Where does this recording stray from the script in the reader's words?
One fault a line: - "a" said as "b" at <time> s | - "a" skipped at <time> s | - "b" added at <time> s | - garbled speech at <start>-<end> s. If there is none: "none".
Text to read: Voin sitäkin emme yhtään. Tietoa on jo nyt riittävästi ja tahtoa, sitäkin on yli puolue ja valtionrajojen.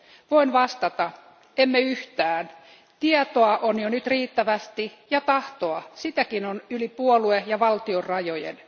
- "sitäkin" said as "vastata" at 0.5 s